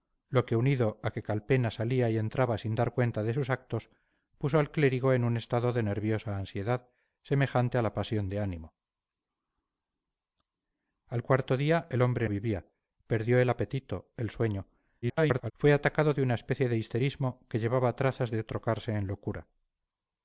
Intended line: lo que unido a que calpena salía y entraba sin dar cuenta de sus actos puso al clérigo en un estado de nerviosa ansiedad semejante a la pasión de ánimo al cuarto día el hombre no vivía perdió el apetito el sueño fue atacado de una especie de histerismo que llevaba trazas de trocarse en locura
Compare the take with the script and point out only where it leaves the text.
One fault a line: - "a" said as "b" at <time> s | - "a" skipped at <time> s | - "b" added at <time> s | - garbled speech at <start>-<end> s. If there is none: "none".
- "no" skipped at 12.3 s
- garbled speech at 15.0-15.5 s